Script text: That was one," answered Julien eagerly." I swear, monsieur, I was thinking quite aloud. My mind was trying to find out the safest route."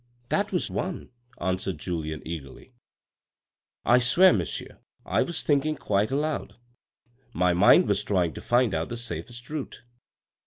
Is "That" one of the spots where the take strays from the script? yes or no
no